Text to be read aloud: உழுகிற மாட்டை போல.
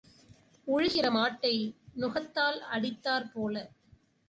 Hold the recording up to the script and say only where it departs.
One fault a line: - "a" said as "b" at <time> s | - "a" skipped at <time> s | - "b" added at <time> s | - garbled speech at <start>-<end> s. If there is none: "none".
- "நுகத்தால் அடித்தாற்" added at 2.0 s